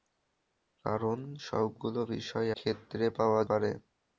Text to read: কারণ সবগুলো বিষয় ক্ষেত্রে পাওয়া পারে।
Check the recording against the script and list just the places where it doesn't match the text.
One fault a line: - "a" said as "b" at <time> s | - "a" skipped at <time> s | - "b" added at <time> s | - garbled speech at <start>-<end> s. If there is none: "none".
none